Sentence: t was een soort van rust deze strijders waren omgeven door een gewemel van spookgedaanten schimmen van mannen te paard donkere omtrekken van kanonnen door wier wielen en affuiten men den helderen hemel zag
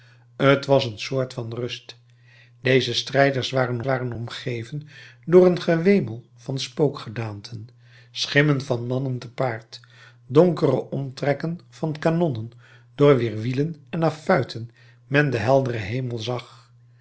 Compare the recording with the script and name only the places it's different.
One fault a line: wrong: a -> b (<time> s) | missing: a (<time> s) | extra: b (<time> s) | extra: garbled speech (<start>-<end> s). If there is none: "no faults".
extra: waren (3.8 s)